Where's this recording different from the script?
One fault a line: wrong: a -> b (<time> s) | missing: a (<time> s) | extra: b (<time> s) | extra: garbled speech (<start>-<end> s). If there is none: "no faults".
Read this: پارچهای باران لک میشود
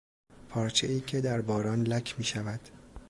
extra: که در (1.0 s)